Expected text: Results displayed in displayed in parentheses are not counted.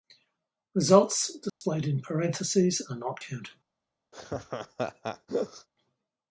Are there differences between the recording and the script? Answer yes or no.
yes